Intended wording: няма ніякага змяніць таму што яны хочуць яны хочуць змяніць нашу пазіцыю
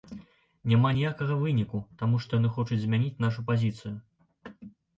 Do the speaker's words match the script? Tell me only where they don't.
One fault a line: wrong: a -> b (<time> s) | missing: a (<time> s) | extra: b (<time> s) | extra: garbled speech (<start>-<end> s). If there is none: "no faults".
wrong: змяніць -> выніку (1.4 s)
missing: яны хочуць (2.8 s)